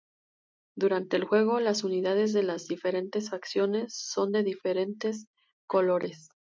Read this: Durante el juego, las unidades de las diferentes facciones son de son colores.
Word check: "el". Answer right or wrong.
right